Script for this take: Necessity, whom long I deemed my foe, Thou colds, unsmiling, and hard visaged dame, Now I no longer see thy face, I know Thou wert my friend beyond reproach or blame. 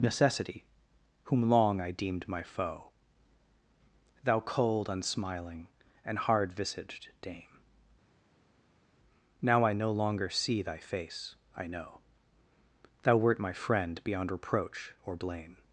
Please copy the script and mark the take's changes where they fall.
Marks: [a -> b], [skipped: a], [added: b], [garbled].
Necessity, whom long I deemed my foe, Thou [colds, -> cold] unsmiling, and hard visaged dame, Now I no longer see thy face, I know Thou wert my friend beyond reproach or blame.